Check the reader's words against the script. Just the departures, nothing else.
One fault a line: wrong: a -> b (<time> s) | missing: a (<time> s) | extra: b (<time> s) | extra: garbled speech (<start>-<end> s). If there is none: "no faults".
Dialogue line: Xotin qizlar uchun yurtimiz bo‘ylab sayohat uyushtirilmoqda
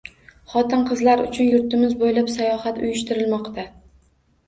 no faults